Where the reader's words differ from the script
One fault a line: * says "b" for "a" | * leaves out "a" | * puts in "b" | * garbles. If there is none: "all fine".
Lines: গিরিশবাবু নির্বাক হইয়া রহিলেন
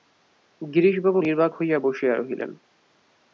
* puts in "বসিয়া"